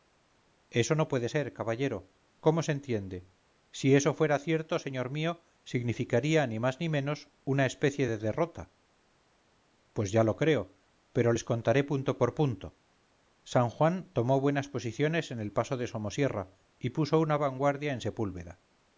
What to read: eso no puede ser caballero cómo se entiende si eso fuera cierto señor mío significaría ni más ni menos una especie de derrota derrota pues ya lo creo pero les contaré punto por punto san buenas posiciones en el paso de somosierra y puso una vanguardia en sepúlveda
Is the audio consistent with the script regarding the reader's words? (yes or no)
no